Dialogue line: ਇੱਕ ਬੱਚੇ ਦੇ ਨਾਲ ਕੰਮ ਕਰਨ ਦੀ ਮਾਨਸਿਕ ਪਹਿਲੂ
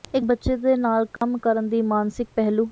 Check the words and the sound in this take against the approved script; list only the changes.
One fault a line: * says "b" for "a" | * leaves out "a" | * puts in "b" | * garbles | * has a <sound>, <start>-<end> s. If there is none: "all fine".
* has a dropout, 1.2-1.2 s